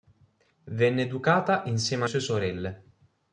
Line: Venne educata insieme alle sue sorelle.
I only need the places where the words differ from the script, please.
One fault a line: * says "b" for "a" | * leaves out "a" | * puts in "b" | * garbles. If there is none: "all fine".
* leaves out "alle"